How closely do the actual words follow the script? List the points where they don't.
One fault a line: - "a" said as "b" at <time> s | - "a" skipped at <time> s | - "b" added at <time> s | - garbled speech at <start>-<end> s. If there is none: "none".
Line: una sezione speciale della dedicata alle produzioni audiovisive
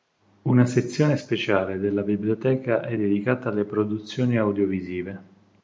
- "biblioteca è" added at 2.0 s